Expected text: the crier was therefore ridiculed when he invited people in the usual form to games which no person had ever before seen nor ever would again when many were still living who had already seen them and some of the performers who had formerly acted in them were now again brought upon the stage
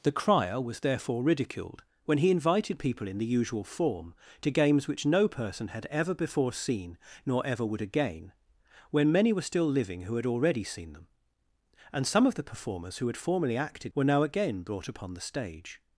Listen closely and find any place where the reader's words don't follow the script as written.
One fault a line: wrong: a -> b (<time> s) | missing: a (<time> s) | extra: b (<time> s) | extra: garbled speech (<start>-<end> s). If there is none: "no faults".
missing: in them (13.9 s)